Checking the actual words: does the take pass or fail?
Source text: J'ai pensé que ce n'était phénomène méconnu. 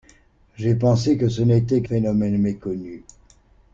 pass